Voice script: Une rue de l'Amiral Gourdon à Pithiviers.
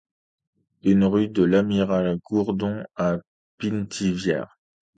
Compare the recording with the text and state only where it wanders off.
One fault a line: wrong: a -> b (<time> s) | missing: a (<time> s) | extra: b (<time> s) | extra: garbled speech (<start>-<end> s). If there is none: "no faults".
no faults